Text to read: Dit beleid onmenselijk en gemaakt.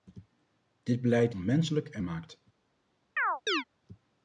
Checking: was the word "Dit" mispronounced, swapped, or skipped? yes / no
no